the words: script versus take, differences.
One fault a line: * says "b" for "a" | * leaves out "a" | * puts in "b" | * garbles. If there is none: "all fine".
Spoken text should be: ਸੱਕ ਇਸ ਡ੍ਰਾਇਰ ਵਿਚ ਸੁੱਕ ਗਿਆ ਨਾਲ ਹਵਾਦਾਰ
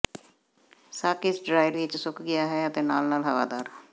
* puts in "ਹੈ ਅਤੇ ਨਾਲ"